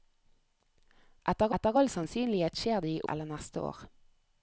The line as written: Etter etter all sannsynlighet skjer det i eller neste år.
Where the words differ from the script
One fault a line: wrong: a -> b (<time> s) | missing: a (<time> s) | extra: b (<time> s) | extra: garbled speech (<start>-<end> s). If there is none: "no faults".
no faults